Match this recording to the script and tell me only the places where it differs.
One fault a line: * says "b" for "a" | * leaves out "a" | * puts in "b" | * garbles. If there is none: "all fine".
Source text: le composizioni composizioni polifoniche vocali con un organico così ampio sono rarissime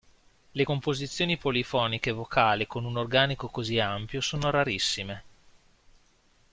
* leaves out "composizioni"